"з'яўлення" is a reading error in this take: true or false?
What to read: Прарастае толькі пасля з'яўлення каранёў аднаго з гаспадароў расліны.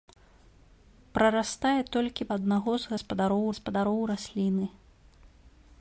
true